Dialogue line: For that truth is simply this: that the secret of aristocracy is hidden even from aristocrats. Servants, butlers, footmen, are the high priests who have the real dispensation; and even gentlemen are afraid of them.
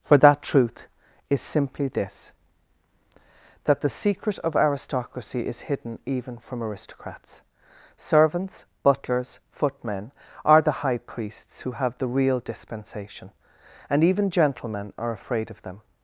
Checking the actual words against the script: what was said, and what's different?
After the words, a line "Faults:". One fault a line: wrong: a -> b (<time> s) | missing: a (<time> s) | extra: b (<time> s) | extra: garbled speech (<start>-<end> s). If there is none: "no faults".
For that truth is simply this: that the secret of aristocracy is hidden even from aristocrats. Servants, butlers, footmen, are the high priests who have the real dispensation; and even gentlemen are afraid of them.
Faults:
no faults